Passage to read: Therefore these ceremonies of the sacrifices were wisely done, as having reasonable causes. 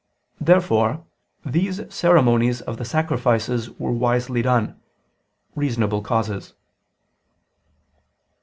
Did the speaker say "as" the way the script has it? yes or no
no